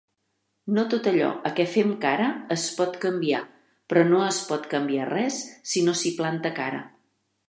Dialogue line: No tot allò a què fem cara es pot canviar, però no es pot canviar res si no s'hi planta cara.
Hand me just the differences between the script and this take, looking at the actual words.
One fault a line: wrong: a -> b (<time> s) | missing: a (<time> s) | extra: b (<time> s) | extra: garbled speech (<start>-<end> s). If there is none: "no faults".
no faults